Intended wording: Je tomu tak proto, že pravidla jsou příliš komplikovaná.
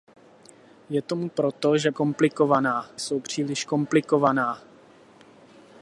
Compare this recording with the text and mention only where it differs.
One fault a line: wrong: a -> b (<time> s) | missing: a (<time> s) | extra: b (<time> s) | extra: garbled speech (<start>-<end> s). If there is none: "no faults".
missing: tak (1.3 s)
wrong: pravidla -> komplikovaná (1.9 s)